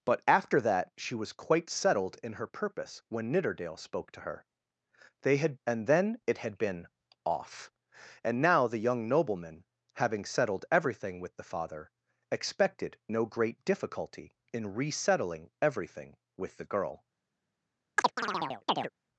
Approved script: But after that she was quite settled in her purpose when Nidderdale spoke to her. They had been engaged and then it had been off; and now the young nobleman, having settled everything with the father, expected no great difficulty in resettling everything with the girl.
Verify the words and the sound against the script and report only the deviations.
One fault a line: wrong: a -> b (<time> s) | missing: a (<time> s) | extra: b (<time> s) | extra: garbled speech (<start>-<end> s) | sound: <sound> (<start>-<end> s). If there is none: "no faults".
missing: been engaged (5.6 s)
sound: chirp (18.0-18.9 s)